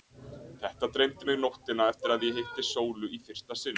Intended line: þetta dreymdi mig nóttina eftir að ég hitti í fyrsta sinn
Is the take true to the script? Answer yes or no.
no